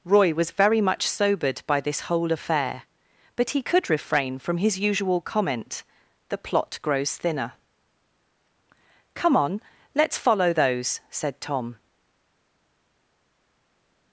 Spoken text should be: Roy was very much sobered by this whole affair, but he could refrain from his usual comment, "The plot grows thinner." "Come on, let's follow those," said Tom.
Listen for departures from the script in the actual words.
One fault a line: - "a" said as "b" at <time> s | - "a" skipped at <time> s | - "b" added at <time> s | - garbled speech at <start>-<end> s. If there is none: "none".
none